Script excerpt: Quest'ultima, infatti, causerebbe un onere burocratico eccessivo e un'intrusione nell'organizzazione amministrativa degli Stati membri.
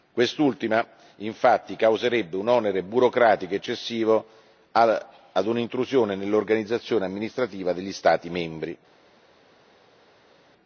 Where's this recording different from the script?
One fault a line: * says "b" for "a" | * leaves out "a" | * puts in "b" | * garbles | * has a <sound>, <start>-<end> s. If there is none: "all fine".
all fine